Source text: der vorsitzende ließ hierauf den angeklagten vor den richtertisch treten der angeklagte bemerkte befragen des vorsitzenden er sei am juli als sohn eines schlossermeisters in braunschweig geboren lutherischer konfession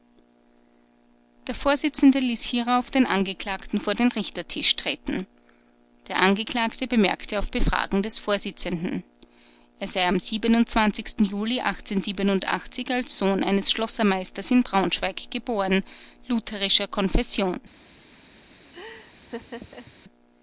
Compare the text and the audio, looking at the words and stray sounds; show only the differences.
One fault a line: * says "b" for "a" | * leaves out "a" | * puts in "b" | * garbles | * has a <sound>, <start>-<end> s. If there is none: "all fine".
* puts in "auf"
* has a laugh, 18.7-19.9 s